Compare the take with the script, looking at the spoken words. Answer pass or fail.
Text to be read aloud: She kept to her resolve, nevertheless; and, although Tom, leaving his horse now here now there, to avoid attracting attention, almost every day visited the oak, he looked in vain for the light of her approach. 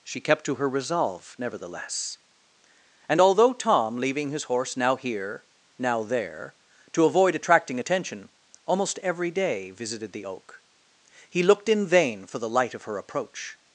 pass